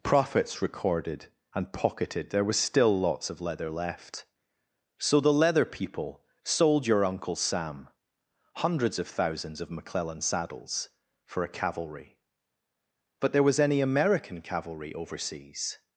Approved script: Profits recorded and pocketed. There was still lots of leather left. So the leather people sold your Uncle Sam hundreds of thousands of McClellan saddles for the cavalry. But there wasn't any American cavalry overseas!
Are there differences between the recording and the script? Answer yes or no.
yes